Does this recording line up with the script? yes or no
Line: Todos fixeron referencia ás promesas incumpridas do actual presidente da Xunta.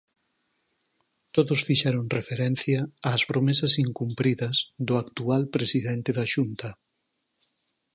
yes